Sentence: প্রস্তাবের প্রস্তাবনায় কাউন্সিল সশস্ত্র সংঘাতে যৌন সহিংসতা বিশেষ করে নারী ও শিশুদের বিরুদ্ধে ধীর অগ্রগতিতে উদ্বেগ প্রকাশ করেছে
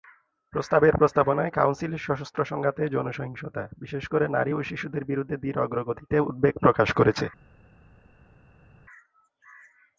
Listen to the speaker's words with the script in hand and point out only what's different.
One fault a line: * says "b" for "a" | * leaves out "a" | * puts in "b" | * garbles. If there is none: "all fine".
all fine